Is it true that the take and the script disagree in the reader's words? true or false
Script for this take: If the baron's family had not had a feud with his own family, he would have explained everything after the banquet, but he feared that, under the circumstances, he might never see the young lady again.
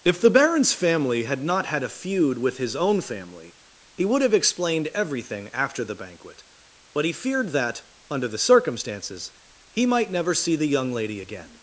false